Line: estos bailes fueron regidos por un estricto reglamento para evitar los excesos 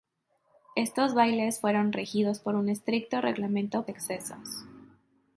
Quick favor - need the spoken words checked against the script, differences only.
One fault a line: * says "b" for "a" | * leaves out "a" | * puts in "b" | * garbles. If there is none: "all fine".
* leaves out "para evitar los"